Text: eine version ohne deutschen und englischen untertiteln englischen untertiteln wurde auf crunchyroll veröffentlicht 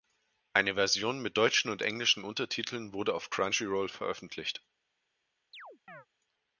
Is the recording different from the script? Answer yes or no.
yes